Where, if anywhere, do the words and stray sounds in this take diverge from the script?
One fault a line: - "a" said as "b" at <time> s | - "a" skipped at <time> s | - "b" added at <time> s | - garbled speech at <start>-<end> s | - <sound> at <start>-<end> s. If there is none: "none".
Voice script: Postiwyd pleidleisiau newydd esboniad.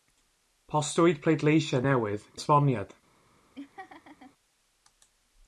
- laugh at 3.5-4.3 s